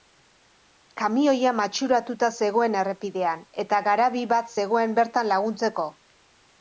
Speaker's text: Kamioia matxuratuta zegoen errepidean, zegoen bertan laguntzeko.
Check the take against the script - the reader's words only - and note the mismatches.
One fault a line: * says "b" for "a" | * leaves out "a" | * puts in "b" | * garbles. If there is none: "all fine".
* puts in "eta garabi bat"